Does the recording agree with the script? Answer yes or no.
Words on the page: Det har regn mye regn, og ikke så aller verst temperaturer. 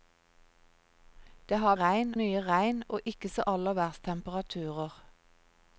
yes